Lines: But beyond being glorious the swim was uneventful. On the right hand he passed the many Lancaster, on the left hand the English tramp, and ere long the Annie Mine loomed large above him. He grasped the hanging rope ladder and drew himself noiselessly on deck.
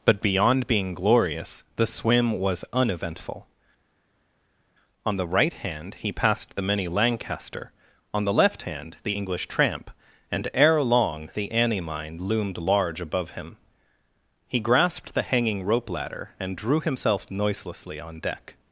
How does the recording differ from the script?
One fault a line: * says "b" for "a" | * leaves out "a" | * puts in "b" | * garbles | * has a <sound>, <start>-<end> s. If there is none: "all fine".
all fine